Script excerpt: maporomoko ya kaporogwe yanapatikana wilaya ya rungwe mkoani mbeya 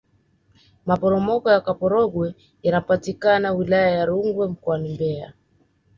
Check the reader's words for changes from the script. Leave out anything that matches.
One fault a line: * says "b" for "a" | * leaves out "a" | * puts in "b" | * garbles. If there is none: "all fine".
all fine